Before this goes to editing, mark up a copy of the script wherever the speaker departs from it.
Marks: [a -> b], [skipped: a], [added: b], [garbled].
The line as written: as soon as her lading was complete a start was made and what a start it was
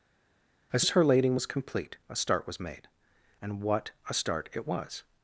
as [skipped: soon] as her lading was complete a start was made and what a start it was